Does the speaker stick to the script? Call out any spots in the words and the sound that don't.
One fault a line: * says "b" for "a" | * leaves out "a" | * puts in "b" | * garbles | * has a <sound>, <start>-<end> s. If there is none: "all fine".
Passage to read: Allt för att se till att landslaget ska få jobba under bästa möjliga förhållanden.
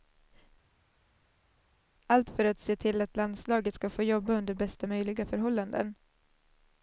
all fine